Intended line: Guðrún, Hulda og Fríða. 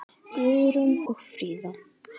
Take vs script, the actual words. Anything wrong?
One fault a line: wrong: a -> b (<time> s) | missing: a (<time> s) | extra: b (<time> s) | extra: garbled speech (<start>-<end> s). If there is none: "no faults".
missing: Hulda (0.9 s)